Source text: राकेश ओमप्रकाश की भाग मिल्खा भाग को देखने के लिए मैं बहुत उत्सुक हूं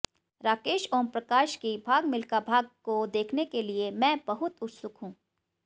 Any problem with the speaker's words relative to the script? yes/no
no